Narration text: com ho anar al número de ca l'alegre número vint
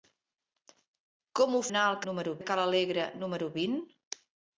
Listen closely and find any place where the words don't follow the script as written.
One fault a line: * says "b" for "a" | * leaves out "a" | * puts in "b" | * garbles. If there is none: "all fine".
all fine